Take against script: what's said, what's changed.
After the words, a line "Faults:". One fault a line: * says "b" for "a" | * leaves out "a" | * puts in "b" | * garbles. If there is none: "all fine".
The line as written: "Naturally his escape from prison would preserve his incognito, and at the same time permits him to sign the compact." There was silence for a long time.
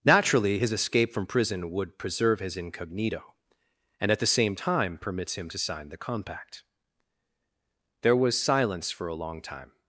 "Naturally his escape from prison would preserve his incognito, and at the same time permits him to sign the compact." There was silence for a long time.
Faults:
all fine